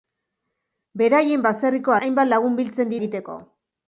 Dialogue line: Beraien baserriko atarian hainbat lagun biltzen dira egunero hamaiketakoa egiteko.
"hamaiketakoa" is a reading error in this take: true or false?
true